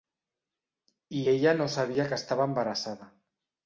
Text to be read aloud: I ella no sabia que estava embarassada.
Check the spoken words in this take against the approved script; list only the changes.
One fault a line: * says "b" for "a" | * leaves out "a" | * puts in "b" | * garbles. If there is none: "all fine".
all fine